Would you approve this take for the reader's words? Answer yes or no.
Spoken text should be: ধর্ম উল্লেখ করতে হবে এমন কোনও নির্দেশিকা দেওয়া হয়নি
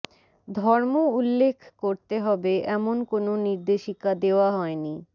yes